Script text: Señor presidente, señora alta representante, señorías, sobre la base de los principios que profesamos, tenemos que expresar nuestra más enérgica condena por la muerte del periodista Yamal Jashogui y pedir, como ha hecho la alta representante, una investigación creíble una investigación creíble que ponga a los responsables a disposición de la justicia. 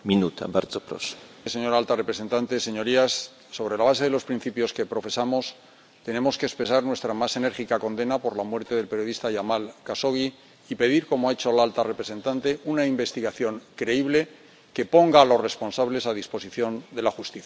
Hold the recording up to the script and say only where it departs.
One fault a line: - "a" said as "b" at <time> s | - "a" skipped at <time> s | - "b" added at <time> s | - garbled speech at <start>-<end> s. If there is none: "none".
- "una investigación creíble" skipped at 14.3 s